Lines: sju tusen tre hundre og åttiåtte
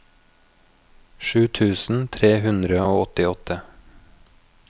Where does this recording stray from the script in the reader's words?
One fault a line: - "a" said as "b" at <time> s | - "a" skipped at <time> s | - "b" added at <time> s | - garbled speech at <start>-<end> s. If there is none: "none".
none